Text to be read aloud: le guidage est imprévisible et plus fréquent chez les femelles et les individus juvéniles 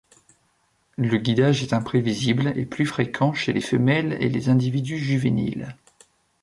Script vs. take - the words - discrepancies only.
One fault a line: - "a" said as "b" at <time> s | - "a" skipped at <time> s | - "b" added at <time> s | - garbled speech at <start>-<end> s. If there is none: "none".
none